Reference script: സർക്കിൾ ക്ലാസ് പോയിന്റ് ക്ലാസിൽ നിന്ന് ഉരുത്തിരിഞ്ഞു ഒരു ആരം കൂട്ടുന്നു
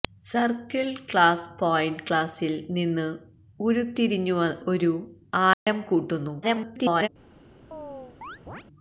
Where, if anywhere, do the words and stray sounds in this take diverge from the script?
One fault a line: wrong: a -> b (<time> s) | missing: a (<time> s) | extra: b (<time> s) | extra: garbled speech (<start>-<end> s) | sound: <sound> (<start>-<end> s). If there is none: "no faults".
sound: dropout (5.5-5.7 s)
extra: garbled speech (6.4-7.1 s)
sound: chirp (7.7-8.6 s)